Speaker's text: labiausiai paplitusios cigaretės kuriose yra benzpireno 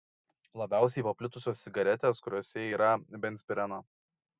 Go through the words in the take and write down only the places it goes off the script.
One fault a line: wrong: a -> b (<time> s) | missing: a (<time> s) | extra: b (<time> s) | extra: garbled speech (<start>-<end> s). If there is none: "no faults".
no faults